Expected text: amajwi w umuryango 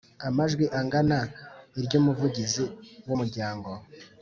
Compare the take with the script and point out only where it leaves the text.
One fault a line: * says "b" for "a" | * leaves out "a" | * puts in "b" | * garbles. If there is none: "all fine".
* puts in "angana iry Umuvugizi"